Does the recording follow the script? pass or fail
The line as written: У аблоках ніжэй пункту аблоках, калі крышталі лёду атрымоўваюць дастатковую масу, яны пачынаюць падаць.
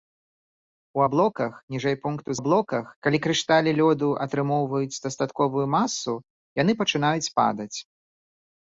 pass